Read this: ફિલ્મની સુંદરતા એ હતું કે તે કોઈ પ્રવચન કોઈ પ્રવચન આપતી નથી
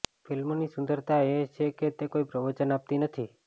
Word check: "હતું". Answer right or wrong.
wrong